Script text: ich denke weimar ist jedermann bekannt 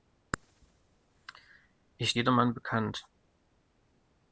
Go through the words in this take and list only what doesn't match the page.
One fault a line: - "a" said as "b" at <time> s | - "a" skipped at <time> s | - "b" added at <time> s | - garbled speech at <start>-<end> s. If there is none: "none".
- "denke weimar ist" skipped at 2.1 s